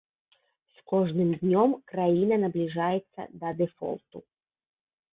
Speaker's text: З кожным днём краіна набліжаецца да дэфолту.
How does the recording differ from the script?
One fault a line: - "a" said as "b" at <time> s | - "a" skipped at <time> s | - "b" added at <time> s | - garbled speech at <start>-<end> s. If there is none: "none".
none